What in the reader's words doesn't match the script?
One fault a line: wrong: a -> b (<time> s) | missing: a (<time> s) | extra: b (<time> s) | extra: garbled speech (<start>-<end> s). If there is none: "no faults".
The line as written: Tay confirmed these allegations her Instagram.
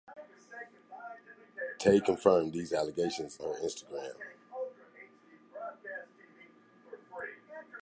no faults